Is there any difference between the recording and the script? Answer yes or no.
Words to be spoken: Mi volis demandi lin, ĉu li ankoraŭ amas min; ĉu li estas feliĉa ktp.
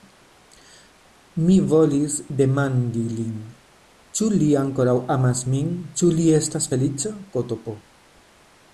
no